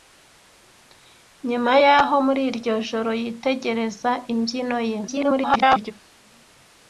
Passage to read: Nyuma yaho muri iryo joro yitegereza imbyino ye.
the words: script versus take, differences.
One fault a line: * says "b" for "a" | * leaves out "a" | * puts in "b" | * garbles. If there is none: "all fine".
* garbles